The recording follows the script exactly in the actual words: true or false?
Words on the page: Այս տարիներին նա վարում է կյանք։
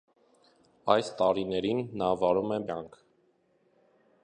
true